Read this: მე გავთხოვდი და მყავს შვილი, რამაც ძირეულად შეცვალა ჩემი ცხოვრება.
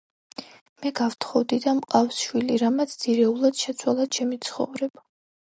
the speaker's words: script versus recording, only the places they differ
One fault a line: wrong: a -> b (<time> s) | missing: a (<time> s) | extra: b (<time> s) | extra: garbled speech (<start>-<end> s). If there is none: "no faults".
no faults